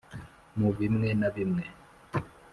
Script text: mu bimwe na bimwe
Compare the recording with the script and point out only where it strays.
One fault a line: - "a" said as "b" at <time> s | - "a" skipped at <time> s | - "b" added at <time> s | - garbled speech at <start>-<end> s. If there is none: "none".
none